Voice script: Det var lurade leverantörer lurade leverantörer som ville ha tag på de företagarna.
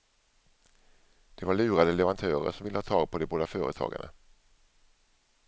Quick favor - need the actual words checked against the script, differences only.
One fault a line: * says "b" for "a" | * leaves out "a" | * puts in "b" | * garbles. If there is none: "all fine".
* leaves out "lurade leverantörer"
* puts in "båda"